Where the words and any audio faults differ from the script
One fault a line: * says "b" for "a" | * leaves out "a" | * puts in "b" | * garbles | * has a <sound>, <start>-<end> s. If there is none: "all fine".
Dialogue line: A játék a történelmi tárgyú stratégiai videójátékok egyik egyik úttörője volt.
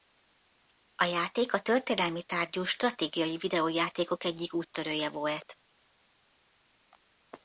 * leaves out "egyik"